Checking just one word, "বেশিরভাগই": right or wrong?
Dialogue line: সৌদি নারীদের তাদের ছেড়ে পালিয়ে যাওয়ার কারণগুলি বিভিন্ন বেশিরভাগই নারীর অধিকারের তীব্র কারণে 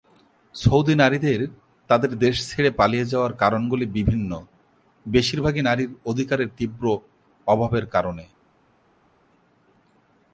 right